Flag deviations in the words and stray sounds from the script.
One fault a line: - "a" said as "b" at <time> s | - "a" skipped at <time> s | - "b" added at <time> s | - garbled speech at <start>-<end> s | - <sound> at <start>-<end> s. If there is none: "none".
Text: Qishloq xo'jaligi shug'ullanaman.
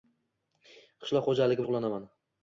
none